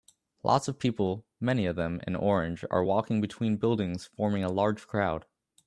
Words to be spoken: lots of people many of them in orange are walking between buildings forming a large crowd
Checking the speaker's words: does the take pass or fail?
pass